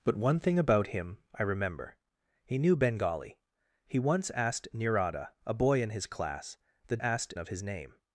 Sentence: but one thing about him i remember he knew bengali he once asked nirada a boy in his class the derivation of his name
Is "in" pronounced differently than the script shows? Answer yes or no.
no